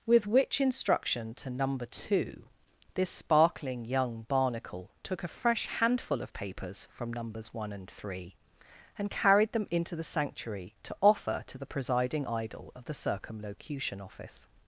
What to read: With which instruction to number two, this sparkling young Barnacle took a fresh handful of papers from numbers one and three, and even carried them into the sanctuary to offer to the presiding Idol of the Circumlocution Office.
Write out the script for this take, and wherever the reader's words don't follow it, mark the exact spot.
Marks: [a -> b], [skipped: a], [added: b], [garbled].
With which instruction to number two, this sparkling young Barnacle took a fresh handful of papers from numbers one and three, and [skipped: even] carried them into the sanctuary to offer to the presiding Idol of the Circumlocution Office.